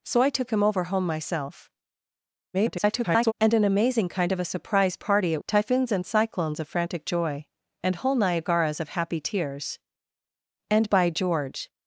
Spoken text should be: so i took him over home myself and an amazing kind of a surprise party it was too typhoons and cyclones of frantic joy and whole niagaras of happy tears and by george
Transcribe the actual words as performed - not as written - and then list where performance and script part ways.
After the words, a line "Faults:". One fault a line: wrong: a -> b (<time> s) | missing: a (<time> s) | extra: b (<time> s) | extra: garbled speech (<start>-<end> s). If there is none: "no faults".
so i took him over home myself [garbled] and an amazing kind of a surprise party it typhoons and cyclones of frantic joy and whole niagaras of happy tears and by george
Faults:
extra: garbled speech (2.5-3.3 s)
missing: was too (5.4 s)